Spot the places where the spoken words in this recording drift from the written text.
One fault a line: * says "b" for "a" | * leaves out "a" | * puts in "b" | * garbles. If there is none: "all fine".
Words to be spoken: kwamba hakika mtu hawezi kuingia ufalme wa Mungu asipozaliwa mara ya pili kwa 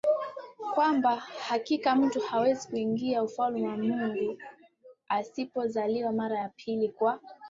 all fine